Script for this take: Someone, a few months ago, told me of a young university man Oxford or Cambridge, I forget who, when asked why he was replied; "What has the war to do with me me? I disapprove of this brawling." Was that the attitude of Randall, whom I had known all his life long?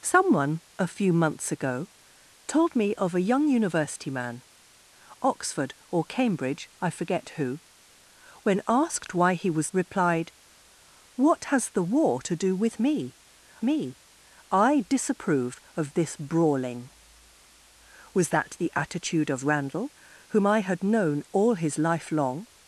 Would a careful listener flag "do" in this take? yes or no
no